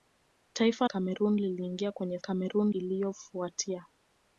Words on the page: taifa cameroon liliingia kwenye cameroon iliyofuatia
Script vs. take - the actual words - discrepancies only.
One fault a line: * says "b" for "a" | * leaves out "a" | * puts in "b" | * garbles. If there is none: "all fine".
all fine